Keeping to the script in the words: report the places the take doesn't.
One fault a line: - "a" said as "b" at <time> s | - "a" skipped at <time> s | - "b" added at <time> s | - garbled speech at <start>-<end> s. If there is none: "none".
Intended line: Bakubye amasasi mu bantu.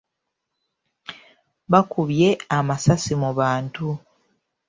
none